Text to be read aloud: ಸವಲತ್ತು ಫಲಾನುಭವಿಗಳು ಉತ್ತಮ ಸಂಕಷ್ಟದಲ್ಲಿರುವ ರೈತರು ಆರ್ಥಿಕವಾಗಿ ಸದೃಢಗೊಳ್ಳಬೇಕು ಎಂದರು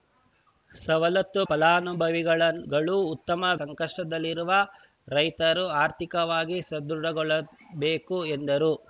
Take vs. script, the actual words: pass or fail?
pass